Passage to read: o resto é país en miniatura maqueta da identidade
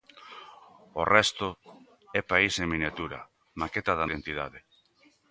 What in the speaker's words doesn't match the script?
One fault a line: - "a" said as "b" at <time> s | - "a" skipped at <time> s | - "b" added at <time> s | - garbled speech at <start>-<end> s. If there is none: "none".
none